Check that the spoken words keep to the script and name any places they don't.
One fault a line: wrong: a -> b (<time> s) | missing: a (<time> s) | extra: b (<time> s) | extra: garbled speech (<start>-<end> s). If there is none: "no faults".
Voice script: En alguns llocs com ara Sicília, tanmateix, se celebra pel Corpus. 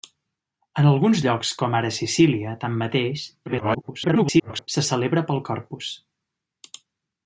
extra: garbled speech (3.5-4.7 s)